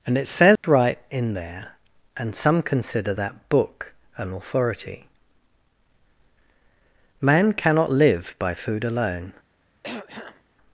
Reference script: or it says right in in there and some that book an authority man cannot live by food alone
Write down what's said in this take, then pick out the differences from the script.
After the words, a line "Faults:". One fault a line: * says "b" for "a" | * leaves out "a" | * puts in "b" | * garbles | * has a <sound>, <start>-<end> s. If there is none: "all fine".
and it says right in there and some consider that book an authority man cannot live by food alone
Faults:
* says "and" for "or"
* has a dropout, 0.6-0.6 s
* leaves out "in"
* puts in "consider"
* has a throat clearing, 9.8-10.4 s